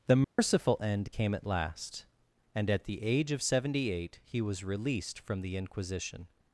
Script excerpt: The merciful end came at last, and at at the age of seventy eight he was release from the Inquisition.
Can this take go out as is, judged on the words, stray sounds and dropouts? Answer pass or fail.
fail